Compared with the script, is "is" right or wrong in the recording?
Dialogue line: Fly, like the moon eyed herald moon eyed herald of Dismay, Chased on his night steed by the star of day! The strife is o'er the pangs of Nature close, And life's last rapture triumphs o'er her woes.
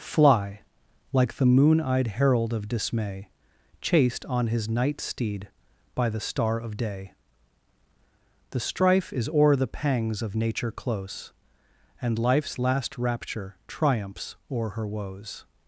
right